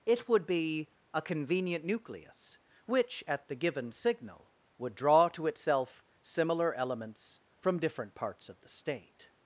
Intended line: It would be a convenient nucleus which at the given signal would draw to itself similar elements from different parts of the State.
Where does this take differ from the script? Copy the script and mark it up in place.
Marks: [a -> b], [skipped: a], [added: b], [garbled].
It would be a convenient nucleus which at the given signal would draw to itself similar elements from different parts of the State.